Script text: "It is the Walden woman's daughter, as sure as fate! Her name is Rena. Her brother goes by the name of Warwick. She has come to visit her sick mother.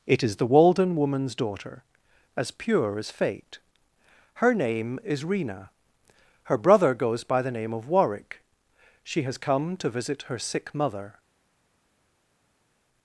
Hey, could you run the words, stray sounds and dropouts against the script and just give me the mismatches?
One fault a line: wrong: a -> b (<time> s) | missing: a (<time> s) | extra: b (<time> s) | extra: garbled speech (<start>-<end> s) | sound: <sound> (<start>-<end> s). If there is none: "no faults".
wrong: sure -> pure (2.5 s)